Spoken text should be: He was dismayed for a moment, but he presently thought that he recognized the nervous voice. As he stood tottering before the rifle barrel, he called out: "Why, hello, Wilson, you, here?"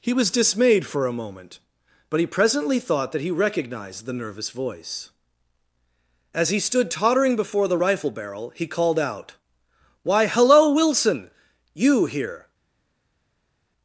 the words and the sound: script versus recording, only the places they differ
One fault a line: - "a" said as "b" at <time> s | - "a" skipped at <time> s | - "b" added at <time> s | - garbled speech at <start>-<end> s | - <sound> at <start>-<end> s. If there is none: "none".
none